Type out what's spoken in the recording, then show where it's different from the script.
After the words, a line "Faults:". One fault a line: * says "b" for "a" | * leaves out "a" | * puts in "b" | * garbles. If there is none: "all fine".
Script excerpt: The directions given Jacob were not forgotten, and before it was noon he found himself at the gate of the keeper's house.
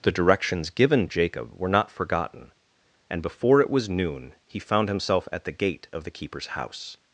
The directions given Jacob were not forgotten, and before it was noon he found himself at the gate of the keeper's house.
Faults:
all fine